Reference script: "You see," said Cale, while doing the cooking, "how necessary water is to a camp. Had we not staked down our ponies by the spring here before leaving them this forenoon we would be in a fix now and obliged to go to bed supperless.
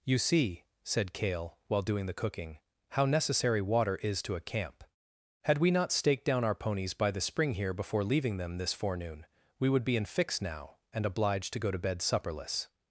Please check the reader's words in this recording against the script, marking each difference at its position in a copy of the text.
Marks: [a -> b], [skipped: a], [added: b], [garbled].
"You see," said Cale, while doing the cooking, "how necessary water is to a camp. Had we not staked down our ponies by the spring here before leaving them this forenoon we would be in [skipped: a] fix now and obliged to go to bed supperless.